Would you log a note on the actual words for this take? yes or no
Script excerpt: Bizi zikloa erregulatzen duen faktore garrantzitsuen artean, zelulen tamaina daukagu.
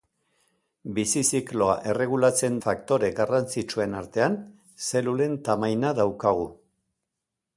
yes